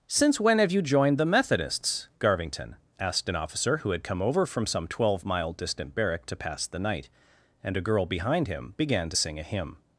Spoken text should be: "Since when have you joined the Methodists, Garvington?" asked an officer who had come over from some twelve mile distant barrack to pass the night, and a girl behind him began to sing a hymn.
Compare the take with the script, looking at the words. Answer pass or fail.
pass